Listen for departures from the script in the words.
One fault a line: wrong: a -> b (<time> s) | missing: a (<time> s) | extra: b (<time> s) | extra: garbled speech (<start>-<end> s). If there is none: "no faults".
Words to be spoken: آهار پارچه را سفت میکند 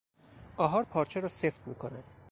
no faults